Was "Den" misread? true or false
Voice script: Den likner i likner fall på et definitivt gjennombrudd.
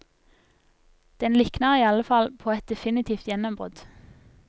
false